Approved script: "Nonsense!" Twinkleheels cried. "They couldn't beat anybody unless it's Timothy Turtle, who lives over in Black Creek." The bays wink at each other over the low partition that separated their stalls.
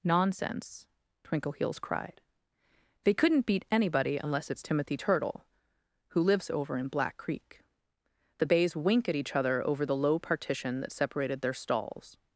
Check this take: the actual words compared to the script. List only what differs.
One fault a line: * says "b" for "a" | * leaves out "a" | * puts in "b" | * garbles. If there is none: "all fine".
all fine